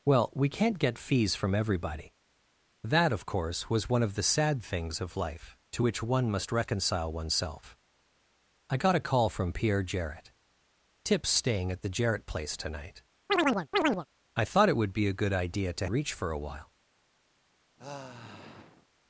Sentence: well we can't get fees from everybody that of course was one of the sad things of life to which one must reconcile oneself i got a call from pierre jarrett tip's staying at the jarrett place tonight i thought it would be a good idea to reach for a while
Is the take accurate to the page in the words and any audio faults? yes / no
no